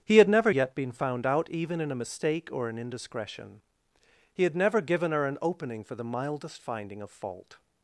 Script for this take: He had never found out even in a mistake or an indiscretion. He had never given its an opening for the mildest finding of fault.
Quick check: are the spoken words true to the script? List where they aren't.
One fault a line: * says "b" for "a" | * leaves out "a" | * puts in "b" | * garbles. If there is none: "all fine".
* puts in "yet been"
* says "her" for "its"